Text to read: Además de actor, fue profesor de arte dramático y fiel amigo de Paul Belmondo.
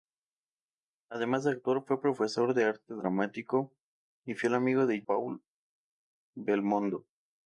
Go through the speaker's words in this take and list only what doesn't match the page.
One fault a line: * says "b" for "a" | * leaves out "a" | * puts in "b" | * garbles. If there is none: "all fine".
all fine